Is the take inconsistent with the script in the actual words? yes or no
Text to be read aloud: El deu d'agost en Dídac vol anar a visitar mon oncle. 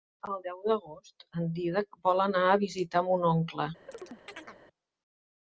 no